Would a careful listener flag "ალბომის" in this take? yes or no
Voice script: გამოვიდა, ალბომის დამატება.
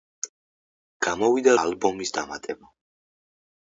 no